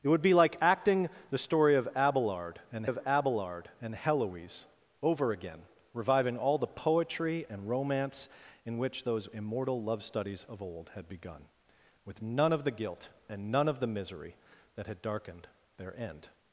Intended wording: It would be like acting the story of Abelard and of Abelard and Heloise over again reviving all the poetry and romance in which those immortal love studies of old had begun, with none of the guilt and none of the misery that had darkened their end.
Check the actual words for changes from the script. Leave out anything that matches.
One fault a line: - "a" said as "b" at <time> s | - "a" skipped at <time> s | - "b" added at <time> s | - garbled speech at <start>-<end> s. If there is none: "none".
none